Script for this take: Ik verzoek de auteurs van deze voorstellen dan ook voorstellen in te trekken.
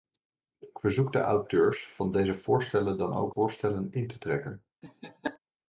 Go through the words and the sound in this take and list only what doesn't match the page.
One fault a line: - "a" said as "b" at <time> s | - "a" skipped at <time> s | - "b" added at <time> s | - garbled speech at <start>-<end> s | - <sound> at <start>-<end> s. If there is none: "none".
- laugh at 4.8-5.4 s